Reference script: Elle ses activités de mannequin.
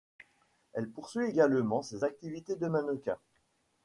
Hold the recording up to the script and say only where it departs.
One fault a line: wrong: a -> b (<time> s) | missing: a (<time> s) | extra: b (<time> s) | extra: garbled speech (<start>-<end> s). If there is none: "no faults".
extra: poursuit également (0.9 s)